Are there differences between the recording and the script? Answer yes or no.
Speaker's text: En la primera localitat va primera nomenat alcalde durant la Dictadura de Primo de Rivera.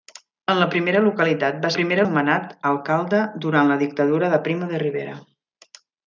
no